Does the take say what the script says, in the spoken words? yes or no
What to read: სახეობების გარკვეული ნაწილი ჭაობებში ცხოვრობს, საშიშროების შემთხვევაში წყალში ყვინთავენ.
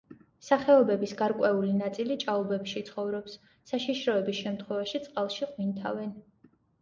yes